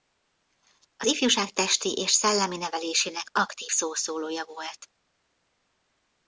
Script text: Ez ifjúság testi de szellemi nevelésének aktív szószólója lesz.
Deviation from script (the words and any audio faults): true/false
true